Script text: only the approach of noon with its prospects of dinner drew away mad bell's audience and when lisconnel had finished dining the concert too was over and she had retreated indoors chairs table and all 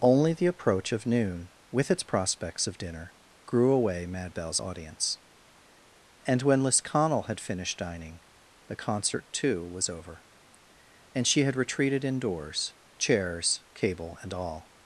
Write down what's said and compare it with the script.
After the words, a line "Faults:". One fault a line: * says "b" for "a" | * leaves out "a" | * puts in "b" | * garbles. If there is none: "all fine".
only the approach of noon with its prospects of dinner grew away mad bell's audience and when lisconnel had finished dining the concert too was over and she had retreated indoors chairs cable and all
Faults:
* says "grew" for "drew"
* says "cable" for "table"